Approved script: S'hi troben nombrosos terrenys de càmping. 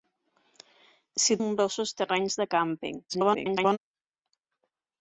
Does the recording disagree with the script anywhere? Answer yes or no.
yes